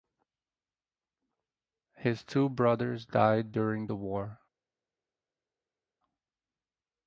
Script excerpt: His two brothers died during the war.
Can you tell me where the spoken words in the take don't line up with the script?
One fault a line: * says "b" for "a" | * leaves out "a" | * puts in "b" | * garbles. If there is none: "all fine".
all fine